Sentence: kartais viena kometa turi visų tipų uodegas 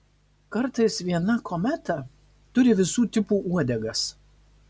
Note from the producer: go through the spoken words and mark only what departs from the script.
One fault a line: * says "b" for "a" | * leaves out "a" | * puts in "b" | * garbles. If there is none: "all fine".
all fine